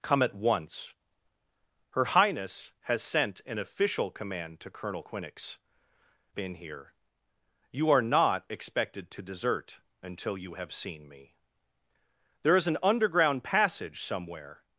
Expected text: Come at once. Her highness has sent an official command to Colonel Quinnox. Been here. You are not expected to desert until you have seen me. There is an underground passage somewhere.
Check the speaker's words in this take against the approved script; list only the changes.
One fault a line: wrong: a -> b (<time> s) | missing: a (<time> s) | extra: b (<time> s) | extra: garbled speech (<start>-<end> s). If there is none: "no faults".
no faults